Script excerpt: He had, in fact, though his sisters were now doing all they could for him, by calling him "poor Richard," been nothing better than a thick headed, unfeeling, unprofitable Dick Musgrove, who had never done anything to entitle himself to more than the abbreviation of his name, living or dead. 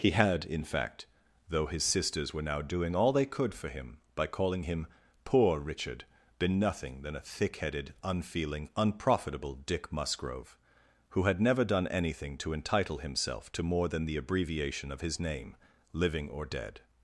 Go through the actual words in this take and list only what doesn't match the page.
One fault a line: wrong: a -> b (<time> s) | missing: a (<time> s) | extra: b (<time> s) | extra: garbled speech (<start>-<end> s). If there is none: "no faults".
missing: better (7.0 s)